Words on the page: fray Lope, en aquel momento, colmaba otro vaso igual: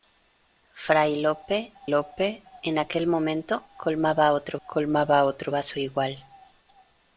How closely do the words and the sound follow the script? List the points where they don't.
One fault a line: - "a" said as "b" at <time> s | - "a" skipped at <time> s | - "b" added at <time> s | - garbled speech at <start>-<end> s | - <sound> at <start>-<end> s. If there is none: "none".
- "Lope" added at 1.9 s
- "colmaba otro" added at 4.7 s